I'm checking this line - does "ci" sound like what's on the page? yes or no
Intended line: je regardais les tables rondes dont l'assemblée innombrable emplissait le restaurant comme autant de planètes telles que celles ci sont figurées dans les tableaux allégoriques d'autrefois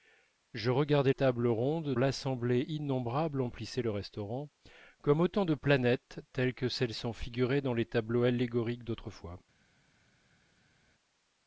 no